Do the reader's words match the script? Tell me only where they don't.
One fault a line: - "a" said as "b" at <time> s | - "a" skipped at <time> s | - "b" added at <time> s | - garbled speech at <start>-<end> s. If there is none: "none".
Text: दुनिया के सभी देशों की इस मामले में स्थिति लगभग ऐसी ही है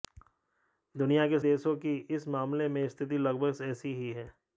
- "सभी" skipped at 1.4 s